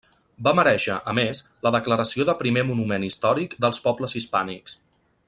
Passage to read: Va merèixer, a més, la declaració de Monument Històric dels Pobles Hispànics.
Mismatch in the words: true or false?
true